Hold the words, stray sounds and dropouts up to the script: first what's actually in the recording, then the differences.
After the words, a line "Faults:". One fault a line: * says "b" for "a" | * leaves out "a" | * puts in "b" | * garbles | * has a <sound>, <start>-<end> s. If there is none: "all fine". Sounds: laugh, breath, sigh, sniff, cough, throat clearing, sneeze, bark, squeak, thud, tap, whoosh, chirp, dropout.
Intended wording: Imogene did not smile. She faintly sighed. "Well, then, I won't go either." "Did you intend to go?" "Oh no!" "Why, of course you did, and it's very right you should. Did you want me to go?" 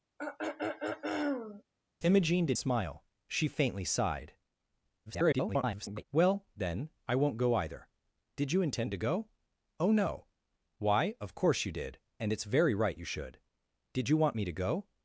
Imogene did smile. She faintly sighed. [garbled] "Well, then, I won't go either." "Did you intend to go?" "Oh no!" "Why, of course you did, and it's very right you should. Did you want me to go?"
Faults:
* has a throat clearing, 0.2-1.6 s
* leaves out "not"
* garbles